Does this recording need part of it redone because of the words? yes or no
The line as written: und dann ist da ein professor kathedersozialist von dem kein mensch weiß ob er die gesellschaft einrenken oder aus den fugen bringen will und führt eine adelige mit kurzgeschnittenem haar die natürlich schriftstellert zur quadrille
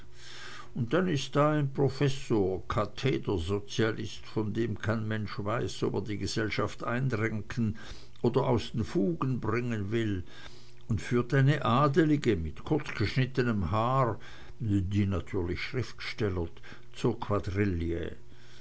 no